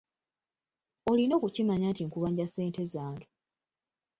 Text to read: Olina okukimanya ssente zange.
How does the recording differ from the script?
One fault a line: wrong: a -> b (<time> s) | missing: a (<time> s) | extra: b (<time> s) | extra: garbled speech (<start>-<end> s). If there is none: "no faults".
extra: nti nkubanja (1.9 s)